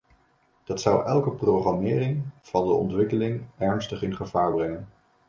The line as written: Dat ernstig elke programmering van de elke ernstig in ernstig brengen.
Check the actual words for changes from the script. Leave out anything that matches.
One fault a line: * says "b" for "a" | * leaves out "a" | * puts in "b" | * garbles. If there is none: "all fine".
* says "zou" for "ernstig"
* says "ontwikkeling" for "elke"
* says "gevaar" for "ernstig"